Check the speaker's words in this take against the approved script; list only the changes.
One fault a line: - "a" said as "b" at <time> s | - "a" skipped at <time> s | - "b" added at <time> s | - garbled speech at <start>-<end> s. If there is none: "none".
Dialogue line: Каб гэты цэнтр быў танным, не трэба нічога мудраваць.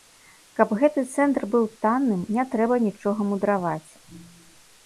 none